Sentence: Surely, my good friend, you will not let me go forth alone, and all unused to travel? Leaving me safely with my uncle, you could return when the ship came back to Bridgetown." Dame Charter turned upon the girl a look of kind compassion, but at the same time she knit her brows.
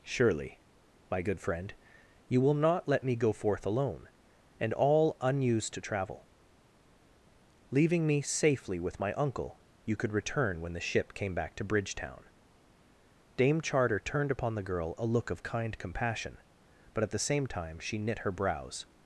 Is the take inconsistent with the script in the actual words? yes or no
no